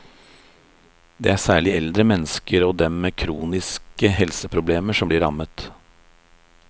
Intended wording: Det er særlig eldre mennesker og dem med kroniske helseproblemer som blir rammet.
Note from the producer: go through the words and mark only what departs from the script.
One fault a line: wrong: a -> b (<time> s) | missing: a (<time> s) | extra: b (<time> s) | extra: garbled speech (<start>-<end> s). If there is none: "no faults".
no faults